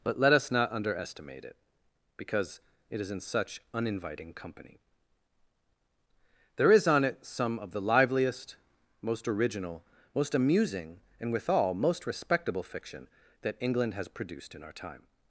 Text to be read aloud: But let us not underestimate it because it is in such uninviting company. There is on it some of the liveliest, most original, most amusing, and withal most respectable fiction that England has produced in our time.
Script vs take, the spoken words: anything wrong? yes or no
no